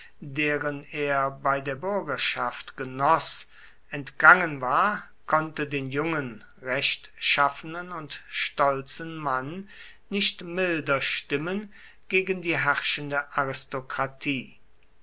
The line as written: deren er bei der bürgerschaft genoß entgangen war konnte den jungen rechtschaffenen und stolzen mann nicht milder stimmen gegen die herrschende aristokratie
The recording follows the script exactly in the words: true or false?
true